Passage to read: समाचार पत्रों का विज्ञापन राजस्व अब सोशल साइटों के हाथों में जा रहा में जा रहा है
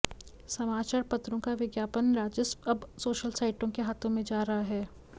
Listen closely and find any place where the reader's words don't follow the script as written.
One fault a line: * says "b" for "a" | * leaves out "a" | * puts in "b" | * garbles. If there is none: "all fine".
* leaves out "में जा रहा"